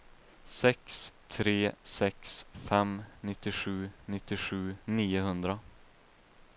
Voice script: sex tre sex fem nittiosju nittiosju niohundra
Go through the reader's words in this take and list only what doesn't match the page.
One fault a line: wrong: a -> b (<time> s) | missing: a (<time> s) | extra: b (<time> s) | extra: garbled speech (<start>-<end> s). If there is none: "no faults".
no faults